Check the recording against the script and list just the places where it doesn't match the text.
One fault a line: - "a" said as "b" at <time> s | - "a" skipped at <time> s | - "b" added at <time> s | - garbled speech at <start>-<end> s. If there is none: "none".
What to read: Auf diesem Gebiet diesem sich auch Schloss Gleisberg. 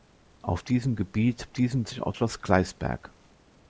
none